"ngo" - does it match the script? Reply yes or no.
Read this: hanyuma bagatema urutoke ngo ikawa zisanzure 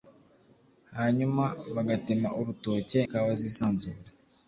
no